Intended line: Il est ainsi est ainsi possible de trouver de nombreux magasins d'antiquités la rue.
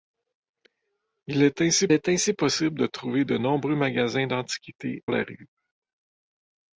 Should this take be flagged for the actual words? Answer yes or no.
no